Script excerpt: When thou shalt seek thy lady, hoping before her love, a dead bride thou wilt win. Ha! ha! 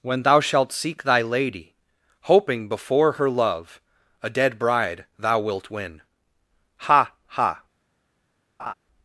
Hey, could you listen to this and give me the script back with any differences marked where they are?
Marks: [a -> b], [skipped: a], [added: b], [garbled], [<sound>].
When thou shalt seek thy lady, hoping before her love, a dead bride thou wilt win. Ha! ha! [laugh]